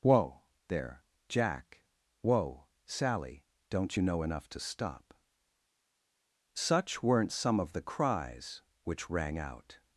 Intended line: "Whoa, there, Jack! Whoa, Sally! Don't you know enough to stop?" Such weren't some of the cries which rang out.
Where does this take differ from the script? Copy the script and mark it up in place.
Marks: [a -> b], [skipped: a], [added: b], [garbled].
"Whoa, there, Jack! Whoa, Sally! Don't you know enough to stop?" Such weren't some of the cries which rang out.